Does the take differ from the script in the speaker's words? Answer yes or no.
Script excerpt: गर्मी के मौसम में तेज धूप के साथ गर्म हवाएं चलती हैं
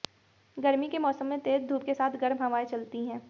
no